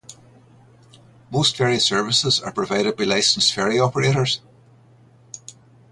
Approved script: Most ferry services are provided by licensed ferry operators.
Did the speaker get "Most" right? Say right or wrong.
right